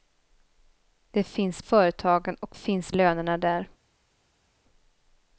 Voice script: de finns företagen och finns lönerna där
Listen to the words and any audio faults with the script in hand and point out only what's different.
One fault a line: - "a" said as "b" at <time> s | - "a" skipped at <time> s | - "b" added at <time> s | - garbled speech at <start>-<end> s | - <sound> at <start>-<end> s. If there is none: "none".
none